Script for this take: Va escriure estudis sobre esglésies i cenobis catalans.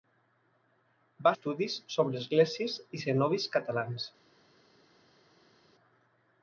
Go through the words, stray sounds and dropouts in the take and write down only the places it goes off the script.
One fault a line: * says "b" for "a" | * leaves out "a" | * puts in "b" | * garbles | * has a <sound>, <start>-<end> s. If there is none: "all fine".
* leaves out "escriure"